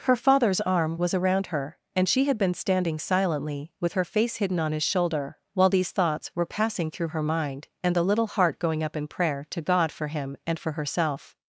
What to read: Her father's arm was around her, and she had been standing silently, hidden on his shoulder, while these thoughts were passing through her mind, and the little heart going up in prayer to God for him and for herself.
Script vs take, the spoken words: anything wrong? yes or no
yes